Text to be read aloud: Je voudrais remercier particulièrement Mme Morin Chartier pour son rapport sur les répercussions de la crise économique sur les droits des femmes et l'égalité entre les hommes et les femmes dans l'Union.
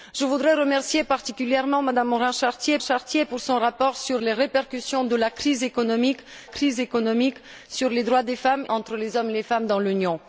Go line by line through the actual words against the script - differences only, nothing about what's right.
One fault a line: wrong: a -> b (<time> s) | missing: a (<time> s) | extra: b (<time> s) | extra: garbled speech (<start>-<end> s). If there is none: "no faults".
extra: Chartier (2.8 s)
extra: crise économique (6.4 s)
missing: et l'égalité (8.6 s)